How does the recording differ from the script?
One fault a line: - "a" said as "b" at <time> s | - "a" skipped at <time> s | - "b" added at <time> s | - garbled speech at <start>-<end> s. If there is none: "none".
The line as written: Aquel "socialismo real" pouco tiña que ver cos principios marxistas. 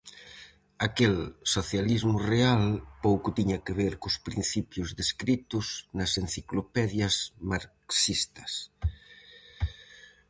- "descritos nas enciclopedias" added at 5.0 s